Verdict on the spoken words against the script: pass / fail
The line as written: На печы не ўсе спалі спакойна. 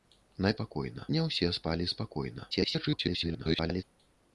fail